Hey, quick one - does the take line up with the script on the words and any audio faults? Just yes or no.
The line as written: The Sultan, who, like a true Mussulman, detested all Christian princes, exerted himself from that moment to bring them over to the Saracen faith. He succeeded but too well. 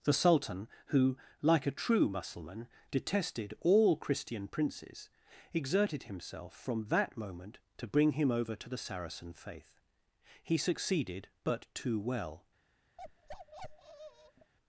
no